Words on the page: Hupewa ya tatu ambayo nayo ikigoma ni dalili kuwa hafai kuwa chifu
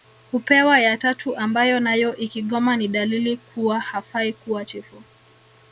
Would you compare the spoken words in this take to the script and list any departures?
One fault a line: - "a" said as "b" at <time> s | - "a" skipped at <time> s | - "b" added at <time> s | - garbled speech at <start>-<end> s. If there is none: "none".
none